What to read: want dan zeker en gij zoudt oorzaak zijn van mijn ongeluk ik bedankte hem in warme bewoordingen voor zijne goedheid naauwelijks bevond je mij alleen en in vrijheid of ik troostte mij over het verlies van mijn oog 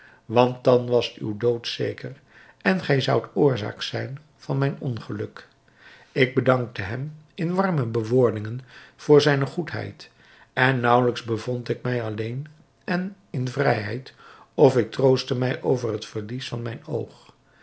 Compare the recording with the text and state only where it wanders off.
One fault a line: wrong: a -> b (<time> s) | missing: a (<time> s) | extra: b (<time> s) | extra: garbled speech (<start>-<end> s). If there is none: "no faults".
extra: was uw dood (0.9 s)
extra: en (10.5 s)
wrong: je -> ik (11.7 s)